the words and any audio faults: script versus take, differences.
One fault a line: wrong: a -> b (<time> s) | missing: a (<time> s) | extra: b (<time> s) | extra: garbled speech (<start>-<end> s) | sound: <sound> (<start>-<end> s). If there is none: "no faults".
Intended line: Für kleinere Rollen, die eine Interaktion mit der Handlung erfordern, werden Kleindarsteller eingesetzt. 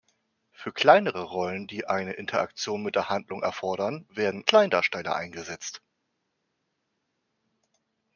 no faults